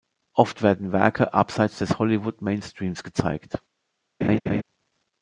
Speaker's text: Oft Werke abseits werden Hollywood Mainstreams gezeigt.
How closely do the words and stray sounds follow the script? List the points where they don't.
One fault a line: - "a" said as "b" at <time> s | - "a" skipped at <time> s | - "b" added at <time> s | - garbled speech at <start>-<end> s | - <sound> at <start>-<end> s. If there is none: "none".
- "werden" added at 0.6 s
- "werden" said as "des" at 1.8 s
- laugh at 4.2-4.6 s